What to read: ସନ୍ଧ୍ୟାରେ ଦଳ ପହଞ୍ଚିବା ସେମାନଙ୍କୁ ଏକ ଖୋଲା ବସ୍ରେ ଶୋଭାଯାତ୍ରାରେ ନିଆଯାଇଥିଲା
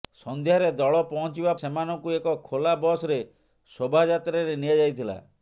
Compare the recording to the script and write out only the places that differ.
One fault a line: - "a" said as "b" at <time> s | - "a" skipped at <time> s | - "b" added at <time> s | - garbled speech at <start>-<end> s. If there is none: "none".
none